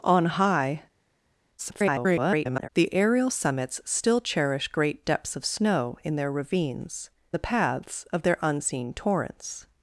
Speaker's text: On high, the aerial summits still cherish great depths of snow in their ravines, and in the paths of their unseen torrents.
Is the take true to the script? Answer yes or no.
no